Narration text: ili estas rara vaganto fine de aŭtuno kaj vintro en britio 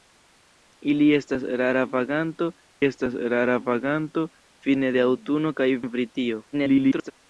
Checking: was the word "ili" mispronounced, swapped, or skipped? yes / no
no